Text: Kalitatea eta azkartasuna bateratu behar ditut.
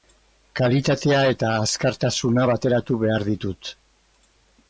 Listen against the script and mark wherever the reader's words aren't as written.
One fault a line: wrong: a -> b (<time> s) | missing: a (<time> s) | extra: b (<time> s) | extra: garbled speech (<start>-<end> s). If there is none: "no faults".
no faults